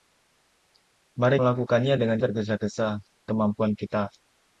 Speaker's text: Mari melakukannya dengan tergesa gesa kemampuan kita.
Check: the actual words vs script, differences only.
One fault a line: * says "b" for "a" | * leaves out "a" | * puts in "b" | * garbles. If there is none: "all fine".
all fine